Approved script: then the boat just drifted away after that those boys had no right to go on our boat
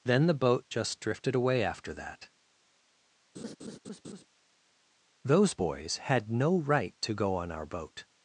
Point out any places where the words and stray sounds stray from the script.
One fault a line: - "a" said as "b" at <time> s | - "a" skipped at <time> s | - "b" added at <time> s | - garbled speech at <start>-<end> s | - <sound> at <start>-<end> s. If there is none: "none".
- laugh at 3.3-4.3 s